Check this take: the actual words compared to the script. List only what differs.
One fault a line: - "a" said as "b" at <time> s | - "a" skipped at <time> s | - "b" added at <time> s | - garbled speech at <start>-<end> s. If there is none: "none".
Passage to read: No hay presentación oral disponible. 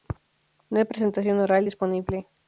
none